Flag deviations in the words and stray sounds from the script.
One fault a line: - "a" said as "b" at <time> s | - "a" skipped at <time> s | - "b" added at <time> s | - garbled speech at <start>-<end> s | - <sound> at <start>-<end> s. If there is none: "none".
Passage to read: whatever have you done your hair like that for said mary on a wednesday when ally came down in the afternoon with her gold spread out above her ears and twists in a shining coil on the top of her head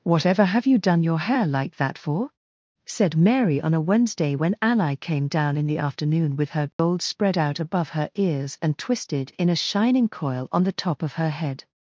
- dropout at 6.7-6.8 s
- "twists" said as "twisted" at 8.8 s